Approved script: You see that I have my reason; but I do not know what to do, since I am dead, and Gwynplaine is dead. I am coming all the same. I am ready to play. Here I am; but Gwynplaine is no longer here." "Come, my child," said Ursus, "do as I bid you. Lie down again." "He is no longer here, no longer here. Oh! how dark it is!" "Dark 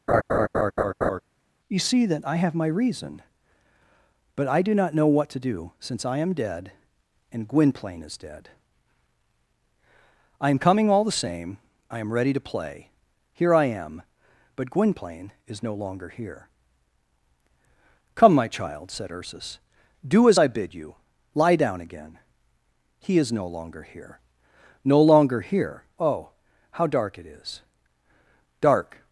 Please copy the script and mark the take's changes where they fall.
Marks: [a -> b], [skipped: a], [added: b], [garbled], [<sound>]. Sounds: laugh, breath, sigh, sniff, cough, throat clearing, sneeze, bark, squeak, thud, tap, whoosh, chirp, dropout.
[laugh] You see that I have my reason; but I do not know what to do, since I am dead, and Gwynplaine is dead. I am coming all the same. I am ready to play. Here I am; but Gwynplaine is no longer here." "Come, my child," said Ursus, "do as I bid you. Lie down again." "He is no longer here, no longer here. Oh! how dark it is!" "Dark